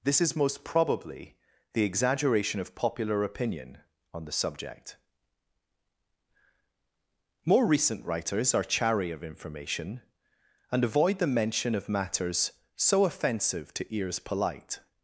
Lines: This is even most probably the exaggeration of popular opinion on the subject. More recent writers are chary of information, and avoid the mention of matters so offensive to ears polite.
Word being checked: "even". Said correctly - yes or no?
no